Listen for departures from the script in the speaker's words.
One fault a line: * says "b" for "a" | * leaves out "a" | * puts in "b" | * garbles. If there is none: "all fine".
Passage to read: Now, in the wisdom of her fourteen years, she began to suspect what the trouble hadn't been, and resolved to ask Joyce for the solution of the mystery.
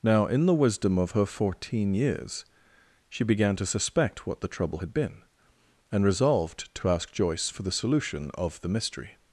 * says "had" for "hadn't"